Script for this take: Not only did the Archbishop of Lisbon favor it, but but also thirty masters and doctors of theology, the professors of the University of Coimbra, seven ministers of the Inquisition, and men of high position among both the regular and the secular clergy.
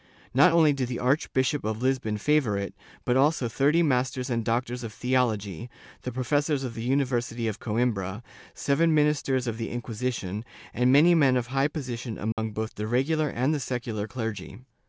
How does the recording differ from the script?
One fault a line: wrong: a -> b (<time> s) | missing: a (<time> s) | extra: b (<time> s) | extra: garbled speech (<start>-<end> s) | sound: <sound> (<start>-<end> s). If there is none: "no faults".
missing: but (3.2 s)
extra: many (10.9 s)
sound: dropout (12.3-12.4 s)